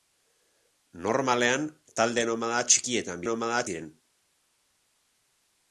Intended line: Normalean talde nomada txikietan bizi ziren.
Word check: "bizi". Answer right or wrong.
wrong